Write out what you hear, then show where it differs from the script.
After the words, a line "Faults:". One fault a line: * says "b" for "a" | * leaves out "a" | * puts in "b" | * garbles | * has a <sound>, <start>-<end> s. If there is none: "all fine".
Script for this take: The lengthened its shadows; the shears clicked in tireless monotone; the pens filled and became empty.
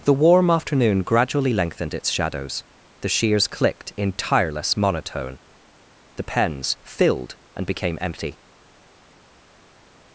The warm afternoon gradually lengthened its shadows; the shears clicked in tireless monotone; the pens filled and became empty.
Faults:
* puts in "warm afternoon gradually"